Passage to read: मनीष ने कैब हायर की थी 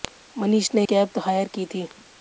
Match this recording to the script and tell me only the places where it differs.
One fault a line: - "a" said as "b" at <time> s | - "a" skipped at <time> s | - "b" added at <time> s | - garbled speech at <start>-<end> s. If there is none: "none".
none